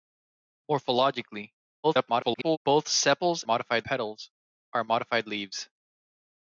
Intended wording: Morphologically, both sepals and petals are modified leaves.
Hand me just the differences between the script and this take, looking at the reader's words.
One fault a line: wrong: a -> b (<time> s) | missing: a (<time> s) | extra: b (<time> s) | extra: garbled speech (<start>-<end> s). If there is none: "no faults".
extra: garbled speech (1.8-2.6 s)
wrong: and -> modified (3.4 s)